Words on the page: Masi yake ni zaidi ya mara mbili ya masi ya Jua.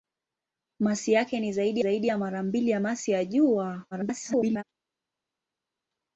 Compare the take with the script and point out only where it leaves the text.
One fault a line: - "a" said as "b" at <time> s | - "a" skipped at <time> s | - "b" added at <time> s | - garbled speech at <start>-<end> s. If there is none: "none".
- "zaidi" added at 1.8 s
- garbled speech at 3.9-4.6 s